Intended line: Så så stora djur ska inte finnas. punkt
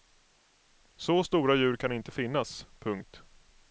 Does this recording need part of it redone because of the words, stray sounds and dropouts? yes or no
yes